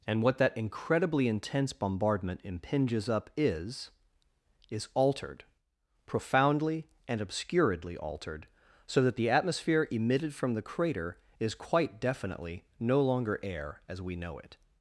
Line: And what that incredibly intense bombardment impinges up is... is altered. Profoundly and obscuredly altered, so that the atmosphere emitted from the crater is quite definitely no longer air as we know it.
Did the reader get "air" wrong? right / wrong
right